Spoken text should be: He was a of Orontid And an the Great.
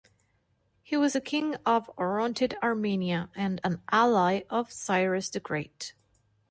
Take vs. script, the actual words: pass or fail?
fail